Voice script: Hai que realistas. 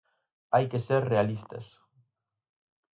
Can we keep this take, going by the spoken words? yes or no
no